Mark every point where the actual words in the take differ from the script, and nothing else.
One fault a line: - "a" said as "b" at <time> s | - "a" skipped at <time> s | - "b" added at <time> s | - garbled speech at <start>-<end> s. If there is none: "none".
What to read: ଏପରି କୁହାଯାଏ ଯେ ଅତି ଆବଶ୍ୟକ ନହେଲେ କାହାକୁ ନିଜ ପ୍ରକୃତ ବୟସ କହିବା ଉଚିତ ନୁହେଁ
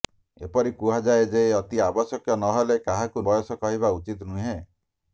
- "ନିଜ ପ୍ରକୃତ" skipped at 3.2 s